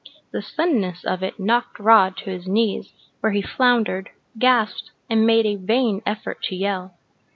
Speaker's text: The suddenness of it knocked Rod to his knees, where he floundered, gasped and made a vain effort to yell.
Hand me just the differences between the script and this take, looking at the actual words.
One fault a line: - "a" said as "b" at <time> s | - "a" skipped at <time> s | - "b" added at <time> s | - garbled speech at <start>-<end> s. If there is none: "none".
none